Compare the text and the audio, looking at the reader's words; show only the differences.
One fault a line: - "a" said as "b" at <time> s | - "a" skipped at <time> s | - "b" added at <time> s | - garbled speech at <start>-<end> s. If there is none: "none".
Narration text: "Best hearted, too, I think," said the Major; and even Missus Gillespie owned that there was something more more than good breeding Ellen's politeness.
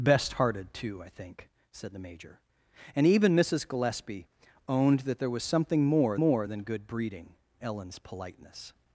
none